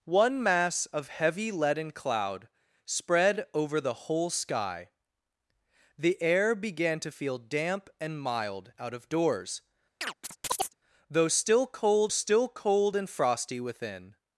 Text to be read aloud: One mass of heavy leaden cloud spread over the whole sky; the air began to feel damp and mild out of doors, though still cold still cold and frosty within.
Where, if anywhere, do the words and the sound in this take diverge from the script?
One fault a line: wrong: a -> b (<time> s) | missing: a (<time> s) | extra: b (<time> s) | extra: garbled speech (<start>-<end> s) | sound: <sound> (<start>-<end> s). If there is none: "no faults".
sound: chirp (10.0-10.7 s)